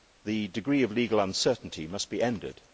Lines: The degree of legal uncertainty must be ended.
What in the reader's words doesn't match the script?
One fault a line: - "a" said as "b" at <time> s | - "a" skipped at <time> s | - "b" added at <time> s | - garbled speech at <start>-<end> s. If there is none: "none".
none